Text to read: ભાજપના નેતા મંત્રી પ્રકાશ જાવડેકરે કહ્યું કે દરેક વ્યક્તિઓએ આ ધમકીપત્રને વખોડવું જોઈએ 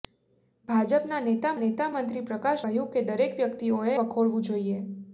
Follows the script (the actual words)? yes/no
no